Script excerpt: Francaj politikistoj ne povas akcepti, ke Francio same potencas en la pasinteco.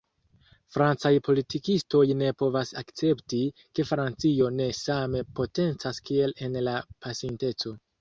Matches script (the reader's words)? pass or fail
fail